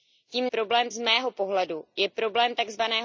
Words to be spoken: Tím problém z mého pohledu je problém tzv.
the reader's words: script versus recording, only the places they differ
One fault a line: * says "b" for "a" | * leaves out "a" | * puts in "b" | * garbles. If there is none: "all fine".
all fine